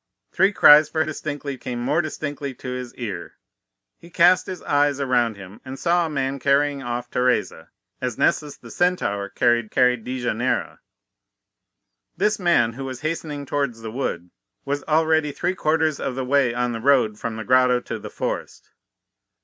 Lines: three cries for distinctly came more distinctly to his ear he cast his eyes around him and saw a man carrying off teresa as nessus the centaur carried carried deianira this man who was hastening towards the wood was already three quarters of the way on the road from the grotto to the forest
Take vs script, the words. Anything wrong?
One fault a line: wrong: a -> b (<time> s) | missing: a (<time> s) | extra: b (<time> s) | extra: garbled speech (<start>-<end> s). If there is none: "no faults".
no faults